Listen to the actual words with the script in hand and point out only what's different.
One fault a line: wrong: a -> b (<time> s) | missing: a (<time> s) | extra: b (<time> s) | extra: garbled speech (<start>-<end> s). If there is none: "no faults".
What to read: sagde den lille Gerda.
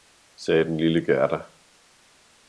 no faults